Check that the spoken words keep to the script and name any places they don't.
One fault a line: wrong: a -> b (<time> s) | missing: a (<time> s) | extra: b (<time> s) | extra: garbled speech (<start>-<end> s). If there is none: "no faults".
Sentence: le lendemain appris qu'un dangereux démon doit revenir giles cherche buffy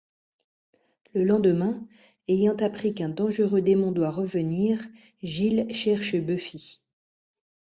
extra: ayant (2.3 s)